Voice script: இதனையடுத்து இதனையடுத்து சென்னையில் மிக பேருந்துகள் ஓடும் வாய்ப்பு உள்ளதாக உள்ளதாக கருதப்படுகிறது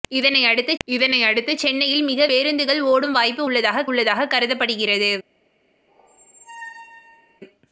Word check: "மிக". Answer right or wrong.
right